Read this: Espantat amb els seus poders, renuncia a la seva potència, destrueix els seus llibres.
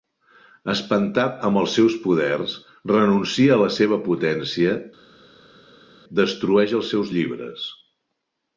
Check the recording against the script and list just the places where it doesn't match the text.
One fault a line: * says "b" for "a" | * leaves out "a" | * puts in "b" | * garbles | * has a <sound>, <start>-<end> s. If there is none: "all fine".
all fine